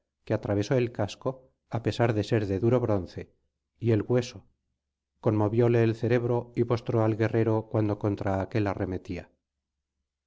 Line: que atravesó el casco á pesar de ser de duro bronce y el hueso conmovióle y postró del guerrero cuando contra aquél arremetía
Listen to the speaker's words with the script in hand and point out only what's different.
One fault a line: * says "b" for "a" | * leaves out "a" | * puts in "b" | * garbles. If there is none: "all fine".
* puts in "el cerebro"
* says "al" for "del"